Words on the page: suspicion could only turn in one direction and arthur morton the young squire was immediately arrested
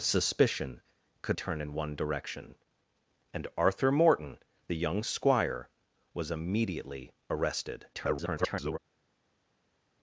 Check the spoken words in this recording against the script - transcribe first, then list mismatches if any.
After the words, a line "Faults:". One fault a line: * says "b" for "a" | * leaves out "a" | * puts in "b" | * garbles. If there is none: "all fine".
suspicion could turn in one direction and arthur morton the young squire was immediately arrested [garbled]
Faults:
* leaves out "only"
* garbles